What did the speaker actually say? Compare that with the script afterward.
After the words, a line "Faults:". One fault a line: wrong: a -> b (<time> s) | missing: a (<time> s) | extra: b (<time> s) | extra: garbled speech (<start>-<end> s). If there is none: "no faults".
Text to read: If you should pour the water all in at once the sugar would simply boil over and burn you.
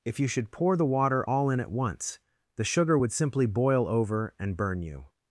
If you should pour the water all in at once the sugar would simply boil over and burn you.
Faults:
no faults